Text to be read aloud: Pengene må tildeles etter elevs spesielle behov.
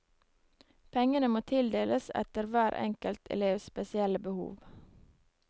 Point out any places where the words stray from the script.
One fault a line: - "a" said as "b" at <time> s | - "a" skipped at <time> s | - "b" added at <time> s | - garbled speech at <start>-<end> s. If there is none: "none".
- "hver enkelt" added at 2.5 s